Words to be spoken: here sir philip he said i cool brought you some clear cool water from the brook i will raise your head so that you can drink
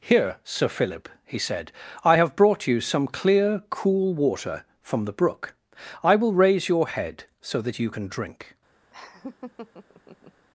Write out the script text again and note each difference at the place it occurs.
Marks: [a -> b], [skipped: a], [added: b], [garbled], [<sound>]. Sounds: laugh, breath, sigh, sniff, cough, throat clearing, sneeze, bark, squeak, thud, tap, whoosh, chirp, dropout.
here sir philip he said i [cool -> have] brought you some clear cool water from the brook i will raise your head so that you can drink [laugh]